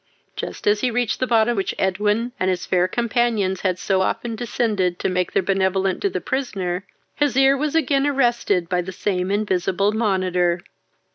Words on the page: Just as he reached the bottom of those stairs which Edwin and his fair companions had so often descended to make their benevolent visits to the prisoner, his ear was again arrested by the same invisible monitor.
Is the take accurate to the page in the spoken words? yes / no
no